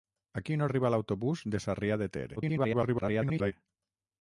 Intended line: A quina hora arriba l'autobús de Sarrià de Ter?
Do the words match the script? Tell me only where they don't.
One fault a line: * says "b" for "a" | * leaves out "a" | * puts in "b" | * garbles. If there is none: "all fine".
* leaves out "hora"
* garbles